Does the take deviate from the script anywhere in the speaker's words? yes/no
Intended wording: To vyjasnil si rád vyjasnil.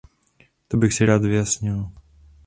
yes